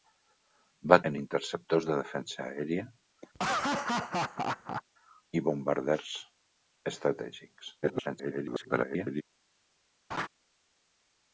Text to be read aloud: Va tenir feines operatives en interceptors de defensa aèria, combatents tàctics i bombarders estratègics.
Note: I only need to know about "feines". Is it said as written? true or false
false